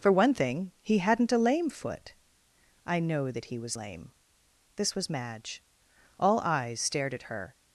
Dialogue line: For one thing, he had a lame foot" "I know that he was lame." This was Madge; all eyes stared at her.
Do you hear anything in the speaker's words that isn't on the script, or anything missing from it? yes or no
yes